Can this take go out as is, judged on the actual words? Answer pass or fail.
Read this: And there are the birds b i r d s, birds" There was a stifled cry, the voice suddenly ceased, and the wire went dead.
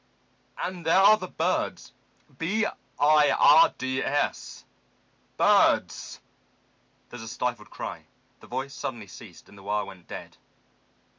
pass